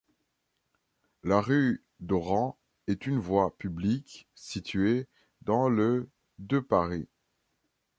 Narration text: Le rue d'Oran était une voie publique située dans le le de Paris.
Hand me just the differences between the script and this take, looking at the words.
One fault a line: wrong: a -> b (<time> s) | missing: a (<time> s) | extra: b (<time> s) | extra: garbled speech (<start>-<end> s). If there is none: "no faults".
wrong: Le -> La (1.2 s)
wrong: était -> est (2.9 s)
missing: le (6.1 s)